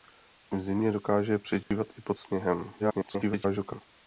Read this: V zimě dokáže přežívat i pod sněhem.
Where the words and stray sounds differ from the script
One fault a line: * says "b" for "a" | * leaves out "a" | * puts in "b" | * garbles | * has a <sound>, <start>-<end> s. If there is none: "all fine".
* has a dropout, 1.6-1.7 s
* garbles